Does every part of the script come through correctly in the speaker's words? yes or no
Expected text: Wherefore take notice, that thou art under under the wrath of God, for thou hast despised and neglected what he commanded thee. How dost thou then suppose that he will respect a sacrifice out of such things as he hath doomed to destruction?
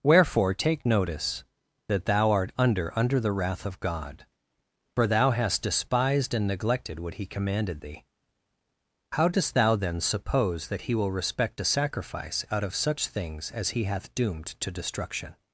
yes